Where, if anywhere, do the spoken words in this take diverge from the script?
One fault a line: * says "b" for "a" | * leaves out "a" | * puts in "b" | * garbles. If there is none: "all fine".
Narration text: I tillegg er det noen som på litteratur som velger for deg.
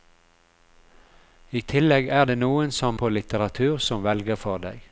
all fine